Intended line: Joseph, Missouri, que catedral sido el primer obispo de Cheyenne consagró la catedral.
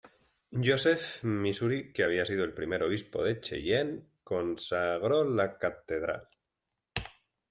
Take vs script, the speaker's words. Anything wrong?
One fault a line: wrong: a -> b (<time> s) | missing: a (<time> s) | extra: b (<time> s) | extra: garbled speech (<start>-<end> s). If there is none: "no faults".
wrong: catedral -> había (2.0 s)